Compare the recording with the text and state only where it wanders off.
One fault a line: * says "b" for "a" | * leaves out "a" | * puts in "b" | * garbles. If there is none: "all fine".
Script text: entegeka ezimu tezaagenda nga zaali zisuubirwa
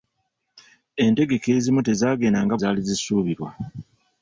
all fine